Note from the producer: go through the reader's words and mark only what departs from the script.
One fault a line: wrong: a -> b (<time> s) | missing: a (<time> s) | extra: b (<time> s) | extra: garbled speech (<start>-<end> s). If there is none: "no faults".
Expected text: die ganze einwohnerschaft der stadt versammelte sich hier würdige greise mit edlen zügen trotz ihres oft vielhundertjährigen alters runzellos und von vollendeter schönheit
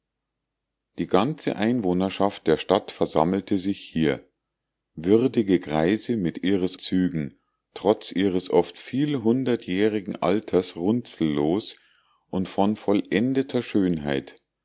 wrong: edlen -> ihres (6.4 s)